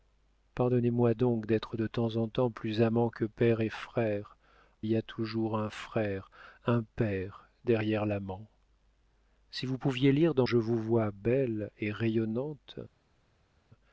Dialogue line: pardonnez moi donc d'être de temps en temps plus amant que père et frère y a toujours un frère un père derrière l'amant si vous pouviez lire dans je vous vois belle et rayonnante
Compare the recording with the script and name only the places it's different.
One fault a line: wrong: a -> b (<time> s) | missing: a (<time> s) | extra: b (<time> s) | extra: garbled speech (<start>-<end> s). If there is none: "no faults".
no faults